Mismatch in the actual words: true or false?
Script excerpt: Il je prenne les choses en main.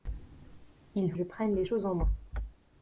false